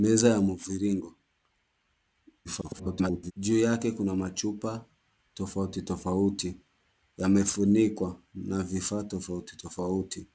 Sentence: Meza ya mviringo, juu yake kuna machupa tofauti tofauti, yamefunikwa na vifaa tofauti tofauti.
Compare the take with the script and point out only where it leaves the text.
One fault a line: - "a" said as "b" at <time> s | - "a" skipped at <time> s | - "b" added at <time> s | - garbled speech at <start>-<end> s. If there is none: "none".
- garbled speech at 2.4-3.3 s